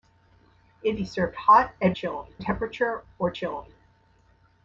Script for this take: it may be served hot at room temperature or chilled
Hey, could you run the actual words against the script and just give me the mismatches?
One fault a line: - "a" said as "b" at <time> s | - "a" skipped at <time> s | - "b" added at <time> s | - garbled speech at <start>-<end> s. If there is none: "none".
- "may" skipped at 1.0 s
- "room" said as "chilled" at 1.9 s